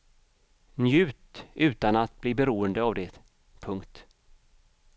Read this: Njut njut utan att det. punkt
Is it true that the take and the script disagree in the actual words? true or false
true